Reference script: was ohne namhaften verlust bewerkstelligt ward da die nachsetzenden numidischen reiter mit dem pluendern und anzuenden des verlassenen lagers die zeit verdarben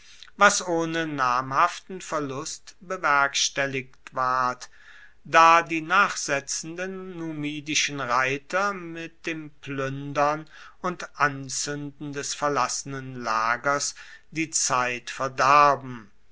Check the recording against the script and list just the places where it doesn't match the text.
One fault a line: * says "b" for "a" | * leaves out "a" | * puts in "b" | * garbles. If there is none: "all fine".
all fine